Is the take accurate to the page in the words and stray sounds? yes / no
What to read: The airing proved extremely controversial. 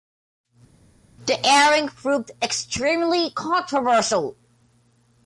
yes